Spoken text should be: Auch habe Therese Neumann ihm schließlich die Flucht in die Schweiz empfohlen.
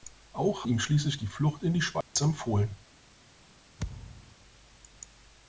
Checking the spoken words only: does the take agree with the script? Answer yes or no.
no